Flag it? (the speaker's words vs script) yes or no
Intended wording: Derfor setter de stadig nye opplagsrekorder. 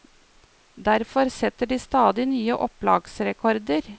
no